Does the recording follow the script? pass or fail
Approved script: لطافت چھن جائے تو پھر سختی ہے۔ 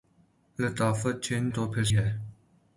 fail